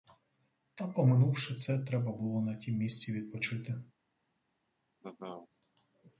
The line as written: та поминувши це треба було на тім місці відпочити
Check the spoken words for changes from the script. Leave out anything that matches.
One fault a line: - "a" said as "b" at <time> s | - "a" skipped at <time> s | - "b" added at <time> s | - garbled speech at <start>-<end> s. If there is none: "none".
none